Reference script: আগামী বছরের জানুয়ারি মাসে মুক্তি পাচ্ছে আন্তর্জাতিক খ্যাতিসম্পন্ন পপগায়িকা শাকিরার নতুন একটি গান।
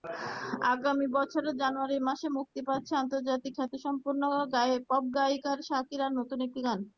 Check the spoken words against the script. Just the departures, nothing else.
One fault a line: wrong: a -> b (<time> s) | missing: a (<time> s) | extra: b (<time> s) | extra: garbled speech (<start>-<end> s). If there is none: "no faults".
no faults